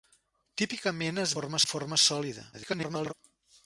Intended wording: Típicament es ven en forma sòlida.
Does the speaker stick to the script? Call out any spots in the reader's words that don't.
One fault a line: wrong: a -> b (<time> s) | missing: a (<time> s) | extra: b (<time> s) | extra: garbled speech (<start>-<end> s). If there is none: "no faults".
wrong: ven -> forma (1.3 s)
extra: garbled speech (2.5-3.1 s)